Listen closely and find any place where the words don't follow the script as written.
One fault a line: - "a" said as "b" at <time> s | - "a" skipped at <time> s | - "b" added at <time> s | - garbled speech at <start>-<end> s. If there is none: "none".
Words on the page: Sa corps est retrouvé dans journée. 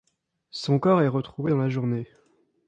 - "Sa" said as "Son" at 0.5 s
- "la" added at 1.6 s